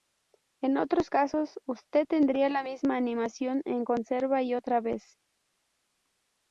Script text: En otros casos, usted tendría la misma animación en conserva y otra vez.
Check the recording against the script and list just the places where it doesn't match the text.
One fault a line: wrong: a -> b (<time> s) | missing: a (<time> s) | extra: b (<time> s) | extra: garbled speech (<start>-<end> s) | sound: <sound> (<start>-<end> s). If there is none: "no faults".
no faults